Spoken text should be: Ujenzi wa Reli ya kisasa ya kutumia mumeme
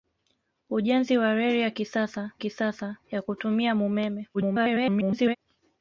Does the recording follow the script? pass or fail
fail